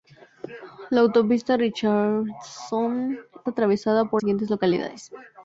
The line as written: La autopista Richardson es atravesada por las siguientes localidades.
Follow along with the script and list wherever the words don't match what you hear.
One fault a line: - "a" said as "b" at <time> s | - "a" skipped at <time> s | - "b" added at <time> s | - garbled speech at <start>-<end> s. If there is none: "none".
- "es" skipped at 3.2 s
- "las" skipped at 4.2 s